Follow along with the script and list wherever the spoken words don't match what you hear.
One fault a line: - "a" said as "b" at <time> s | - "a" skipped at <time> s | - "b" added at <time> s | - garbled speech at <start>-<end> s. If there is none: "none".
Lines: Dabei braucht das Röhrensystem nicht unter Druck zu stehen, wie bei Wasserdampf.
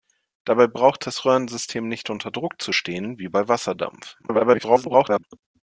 - garbled speech at 4.2-5.2 s